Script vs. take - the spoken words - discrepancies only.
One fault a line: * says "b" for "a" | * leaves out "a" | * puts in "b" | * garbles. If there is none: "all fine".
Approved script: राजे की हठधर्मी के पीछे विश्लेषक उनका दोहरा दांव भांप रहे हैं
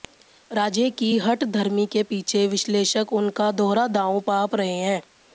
all fine